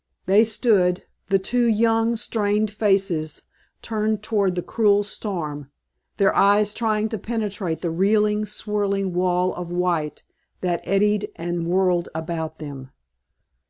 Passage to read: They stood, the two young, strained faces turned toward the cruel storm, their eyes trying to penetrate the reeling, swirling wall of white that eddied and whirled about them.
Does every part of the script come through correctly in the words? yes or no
yes